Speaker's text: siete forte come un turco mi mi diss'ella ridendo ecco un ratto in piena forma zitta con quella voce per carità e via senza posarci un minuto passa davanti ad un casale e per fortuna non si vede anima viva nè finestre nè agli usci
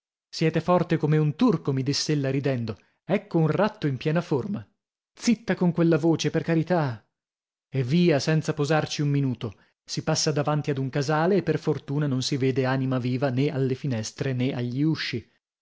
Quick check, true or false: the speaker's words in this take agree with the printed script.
false